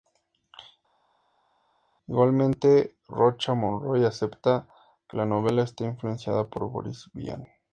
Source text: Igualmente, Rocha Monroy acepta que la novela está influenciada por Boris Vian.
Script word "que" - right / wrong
right